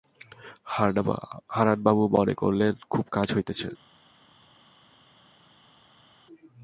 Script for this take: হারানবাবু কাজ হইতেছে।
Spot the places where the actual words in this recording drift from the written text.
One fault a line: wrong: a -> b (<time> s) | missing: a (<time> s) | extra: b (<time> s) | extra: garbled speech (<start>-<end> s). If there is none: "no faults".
extra: মনে করিলেন খুব (2.1 s)